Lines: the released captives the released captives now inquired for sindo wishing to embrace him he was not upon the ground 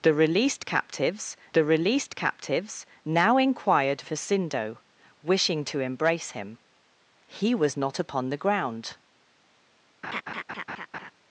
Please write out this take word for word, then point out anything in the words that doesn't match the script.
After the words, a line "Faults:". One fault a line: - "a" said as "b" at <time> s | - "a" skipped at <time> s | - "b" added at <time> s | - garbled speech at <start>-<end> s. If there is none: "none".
the released captives the released captives now inquired for sindo wishing to embrace him he was not upon the ground
Faults:
none